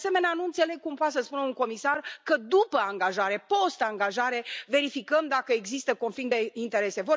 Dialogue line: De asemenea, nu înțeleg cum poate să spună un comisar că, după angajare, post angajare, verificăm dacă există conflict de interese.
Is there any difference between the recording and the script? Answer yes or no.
no